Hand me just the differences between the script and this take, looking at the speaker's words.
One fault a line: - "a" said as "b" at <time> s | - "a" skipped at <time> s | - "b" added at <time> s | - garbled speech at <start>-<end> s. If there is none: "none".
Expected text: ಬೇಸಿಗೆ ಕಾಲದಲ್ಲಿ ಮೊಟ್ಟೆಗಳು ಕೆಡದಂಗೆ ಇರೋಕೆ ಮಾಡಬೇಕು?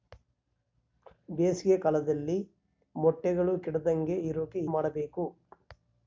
none